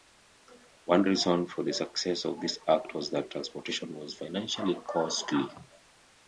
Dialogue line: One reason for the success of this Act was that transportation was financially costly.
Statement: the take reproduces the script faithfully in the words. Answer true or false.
true